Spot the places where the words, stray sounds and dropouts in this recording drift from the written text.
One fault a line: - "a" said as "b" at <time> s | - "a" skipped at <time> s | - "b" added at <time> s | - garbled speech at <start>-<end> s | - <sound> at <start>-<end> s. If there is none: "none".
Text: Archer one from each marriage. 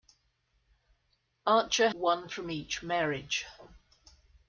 none